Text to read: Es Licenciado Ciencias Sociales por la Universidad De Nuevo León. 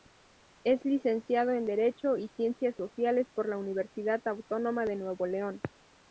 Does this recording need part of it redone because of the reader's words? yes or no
yes